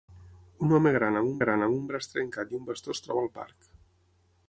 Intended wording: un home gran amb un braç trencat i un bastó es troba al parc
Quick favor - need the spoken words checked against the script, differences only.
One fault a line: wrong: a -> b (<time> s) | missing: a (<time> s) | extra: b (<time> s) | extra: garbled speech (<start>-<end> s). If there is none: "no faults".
extra: gran amb un (1.4 s)